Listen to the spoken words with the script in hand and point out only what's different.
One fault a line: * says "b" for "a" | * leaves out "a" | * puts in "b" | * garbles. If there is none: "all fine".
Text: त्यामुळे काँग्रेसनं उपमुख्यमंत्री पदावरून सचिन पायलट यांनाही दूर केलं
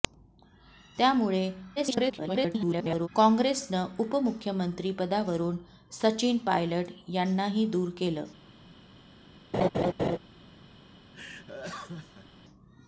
* garbles